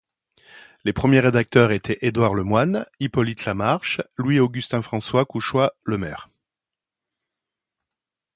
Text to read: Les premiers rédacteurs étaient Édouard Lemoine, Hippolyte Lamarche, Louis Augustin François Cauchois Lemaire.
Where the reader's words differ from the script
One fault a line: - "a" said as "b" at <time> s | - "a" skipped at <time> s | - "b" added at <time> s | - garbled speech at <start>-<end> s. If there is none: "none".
none